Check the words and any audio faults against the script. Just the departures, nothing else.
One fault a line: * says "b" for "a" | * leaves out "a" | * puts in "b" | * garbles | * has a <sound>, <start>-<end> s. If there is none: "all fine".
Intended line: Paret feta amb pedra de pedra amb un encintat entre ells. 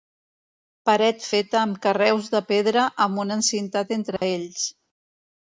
* says "carreus" for "pedra"
* has a dropout, 4.2-4.2 s